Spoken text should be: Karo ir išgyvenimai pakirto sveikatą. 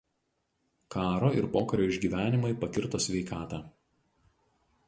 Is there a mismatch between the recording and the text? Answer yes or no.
yes